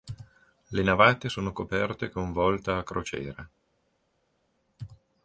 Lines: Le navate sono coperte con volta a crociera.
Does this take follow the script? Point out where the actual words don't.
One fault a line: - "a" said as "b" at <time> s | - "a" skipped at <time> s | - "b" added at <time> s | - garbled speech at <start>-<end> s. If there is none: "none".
none